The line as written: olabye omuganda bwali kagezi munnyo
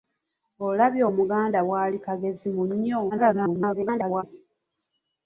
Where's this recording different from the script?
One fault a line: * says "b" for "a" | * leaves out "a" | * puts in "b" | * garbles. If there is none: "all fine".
* garbles